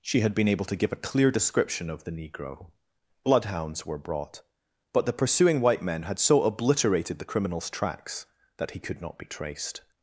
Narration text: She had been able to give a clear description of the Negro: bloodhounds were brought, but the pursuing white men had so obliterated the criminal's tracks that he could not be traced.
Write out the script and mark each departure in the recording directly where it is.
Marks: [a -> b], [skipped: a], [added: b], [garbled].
She had been able to give a clear description of the Negro: bloodhounds were brought, but the pursuing white men had so obliterated the criminal's tracks that he could not be traced.